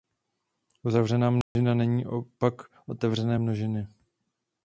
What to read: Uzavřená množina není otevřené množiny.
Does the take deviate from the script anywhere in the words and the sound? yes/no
yes